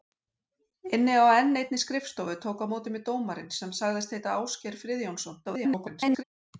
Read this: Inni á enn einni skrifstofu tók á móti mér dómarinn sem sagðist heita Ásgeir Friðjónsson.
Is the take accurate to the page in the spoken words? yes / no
no